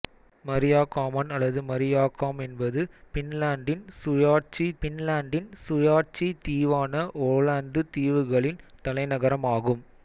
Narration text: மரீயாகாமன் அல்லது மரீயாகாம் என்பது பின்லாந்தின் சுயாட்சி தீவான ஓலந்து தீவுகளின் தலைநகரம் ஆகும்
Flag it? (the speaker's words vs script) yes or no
yes